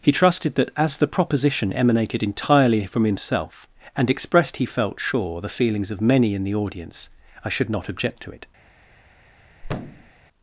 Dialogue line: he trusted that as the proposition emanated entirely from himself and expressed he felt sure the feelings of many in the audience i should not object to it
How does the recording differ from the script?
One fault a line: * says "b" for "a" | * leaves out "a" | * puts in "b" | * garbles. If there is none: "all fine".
all fine